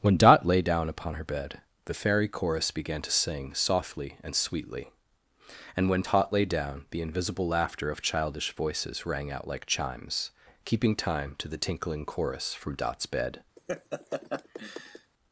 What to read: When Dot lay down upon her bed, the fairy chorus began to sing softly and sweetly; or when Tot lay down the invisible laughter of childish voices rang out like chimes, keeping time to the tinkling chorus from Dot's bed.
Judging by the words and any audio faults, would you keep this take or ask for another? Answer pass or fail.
fail